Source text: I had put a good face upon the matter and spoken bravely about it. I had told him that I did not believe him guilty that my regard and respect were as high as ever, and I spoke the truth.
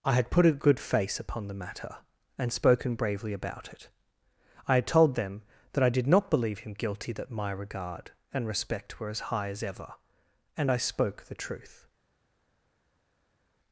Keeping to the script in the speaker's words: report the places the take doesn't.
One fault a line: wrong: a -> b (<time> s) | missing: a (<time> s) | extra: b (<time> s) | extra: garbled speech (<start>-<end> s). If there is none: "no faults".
wrong: him -> them (5.1 s)